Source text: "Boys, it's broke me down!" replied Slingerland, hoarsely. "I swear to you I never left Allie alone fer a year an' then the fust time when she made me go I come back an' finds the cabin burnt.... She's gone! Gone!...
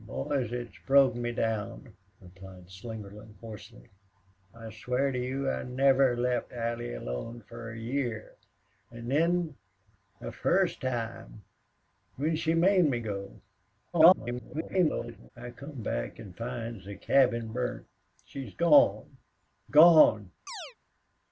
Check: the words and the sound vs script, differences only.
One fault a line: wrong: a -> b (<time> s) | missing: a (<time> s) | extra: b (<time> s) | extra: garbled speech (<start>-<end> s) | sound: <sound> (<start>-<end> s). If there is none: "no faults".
extra: garbled speech (13.9-15.3 s)
sound: chirp (20.5-20.8 s)